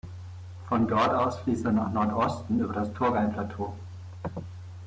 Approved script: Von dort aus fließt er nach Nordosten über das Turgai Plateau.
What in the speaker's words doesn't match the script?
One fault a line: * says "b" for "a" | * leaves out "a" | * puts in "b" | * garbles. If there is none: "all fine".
all fine